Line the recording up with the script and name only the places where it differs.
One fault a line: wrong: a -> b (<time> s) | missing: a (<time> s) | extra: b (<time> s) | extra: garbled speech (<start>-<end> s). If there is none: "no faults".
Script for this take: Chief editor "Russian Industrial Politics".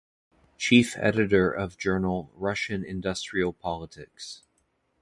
extra: of journal (1.5 s)